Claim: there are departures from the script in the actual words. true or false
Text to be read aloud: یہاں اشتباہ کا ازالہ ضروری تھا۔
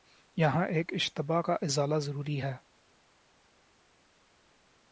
true